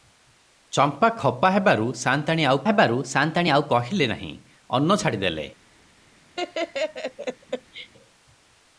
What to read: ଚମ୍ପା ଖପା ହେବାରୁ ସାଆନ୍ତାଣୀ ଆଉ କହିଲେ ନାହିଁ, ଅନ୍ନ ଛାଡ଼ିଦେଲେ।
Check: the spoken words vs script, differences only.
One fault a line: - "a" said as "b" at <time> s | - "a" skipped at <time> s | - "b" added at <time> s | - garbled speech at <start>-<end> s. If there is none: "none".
- "ହେବାରୁ ସାଆନ୍ତାଣୀ ଆଉ" added at 2.6 s